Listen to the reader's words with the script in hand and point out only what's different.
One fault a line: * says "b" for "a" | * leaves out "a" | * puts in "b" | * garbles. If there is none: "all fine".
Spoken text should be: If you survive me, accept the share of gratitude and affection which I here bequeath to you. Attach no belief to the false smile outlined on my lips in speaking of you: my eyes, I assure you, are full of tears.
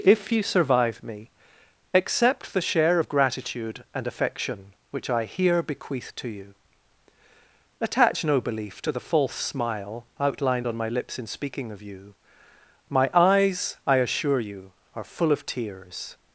all fine